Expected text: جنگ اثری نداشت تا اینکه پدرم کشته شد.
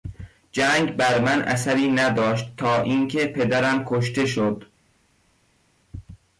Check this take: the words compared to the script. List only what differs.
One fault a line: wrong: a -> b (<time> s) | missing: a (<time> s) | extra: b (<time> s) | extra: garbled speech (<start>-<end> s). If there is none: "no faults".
extra: بر من (0.9 s)